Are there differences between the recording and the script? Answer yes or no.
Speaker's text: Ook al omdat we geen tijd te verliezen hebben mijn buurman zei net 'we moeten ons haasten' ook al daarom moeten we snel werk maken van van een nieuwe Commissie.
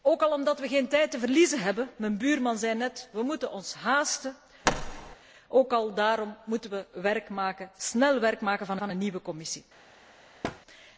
no